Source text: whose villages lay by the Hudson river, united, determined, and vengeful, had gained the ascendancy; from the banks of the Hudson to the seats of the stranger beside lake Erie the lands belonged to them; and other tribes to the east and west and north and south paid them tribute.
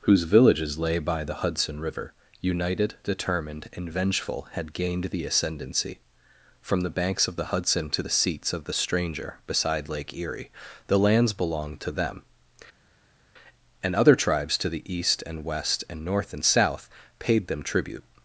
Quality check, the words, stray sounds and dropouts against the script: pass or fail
pass